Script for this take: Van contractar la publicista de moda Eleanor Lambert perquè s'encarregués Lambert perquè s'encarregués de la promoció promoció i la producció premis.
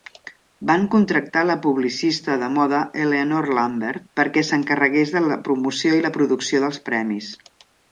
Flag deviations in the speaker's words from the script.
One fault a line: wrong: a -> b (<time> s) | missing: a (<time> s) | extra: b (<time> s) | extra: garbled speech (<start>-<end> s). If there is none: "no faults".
missing: Lambert perquè s'encarregués (5.2 s)
missing: promoció (6.0 s)
extra: dels (6.7 s)